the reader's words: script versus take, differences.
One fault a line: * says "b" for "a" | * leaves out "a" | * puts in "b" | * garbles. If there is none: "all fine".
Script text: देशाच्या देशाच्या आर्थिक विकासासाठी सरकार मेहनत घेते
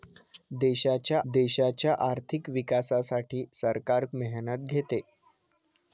all fine